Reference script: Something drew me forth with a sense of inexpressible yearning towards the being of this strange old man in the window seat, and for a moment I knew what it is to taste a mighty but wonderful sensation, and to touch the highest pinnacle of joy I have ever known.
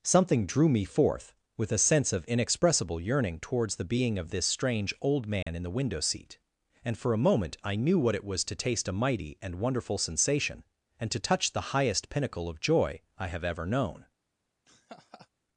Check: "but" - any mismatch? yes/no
yes